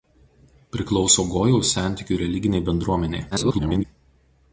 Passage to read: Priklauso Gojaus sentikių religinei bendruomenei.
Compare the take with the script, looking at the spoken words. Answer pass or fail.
fail